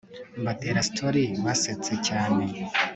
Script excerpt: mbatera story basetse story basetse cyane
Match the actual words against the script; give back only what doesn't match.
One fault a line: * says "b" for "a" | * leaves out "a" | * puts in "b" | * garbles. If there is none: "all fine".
* leaves out "story basetse"